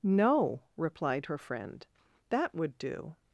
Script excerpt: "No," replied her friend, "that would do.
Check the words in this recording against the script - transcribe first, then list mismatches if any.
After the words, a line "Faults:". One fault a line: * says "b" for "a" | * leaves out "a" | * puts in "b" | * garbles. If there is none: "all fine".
"No," replied her friend, "that would do.
Faults:
all fine